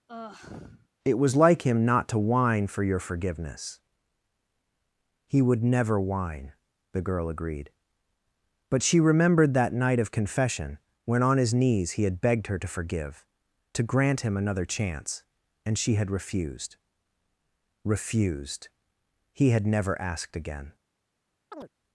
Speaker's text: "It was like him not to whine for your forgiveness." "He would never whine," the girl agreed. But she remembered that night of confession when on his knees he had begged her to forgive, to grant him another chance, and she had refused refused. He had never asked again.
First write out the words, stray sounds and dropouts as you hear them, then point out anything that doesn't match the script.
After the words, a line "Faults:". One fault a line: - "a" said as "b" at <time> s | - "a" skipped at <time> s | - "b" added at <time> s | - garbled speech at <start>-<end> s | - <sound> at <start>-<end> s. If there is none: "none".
"It was like him not to whine for your forgiveness." "He would never whine," the girl agreed. But she remembered that night of confession when on his knees he had begged her to forgive, to grant him another chance, and she had refused refused. He had never asked again.
Faults:
- sigh at 0.1-0.9 s
- chirp at 21.5-21.7 s